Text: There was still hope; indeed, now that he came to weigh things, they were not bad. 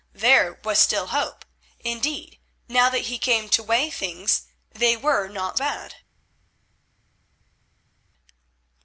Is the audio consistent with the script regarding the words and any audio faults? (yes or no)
yes